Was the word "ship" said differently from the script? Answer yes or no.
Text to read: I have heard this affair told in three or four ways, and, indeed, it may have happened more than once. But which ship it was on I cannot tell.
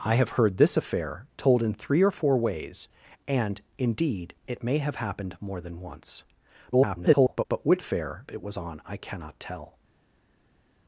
yes